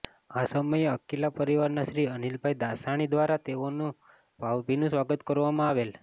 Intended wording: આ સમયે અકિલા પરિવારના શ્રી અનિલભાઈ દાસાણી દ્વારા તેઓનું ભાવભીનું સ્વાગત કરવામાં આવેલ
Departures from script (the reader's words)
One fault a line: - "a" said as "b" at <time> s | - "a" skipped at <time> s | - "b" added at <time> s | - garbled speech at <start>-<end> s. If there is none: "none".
none